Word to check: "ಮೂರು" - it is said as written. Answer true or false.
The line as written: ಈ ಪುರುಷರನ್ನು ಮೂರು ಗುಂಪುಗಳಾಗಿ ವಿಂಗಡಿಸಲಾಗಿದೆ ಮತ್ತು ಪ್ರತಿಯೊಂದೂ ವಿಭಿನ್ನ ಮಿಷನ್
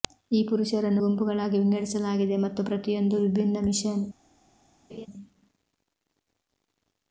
false